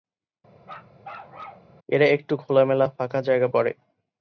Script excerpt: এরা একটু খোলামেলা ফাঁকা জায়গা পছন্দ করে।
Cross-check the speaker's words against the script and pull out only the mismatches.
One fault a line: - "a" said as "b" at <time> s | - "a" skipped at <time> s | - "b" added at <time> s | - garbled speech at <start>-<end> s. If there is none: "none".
- "পছন্দ" skipped at 3.5 s